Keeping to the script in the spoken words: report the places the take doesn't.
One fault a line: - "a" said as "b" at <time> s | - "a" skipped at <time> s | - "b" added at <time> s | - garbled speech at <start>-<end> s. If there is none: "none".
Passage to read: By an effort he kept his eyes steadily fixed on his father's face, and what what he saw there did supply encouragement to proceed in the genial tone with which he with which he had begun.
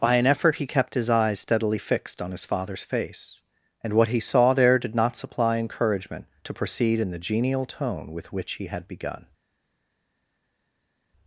- "what" skipped at 4.1 s
- "not" added at 4.9 s
- "with which he" skipped at 8.7 s